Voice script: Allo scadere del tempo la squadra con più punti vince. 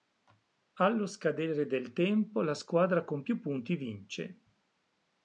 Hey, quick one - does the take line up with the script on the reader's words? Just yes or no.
yes